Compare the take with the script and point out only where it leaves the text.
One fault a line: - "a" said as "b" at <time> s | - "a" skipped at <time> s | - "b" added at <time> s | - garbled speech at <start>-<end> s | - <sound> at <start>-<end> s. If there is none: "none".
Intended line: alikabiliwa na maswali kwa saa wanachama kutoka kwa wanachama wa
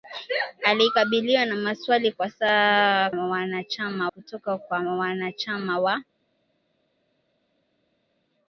none